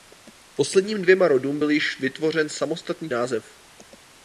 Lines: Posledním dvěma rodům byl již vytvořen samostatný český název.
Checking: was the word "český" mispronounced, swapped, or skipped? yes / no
yes